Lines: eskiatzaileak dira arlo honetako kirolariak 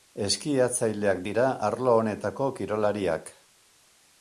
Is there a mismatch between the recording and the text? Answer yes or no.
no